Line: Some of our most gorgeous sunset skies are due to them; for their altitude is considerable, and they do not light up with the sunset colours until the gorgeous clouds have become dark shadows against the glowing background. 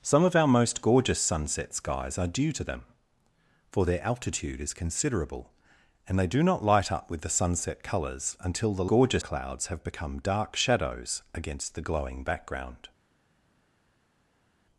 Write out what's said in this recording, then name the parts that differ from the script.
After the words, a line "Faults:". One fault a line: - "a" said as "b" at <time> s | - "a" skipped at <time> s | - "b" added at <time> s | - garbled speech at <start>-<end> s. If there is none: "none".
Some of our most gorgeous sunset skies are due to them; for their altitude is considerable, and they do not light up with the sunset colours until the gorgeous clouds have become dark shadows against the glowing background.
Faults:
none